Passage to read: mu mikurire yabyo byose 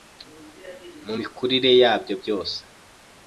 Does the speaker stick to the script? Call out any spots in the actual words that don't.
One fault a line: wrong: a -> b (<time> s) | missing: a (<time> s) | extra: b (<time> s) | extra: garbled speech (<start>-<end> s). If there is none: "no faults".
no faults